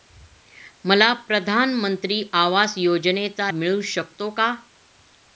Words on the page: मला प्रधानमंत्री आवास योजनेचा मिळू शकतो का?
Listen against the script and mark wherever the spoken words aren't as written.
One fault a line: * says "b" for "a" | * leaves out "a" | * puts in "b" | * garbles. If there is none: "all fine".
all fine